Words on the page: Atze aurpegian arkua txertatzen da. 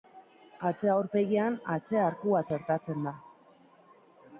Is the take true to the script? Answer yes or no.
no